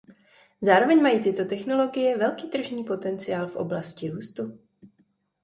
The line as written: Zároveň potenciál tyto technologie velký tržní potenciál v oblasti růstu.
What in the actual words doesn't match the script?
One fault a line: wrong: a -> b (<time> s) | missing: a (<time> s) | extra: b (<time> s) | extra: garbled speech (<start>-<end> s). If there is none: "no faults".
wrong: potenciál -> mají (1.0 s)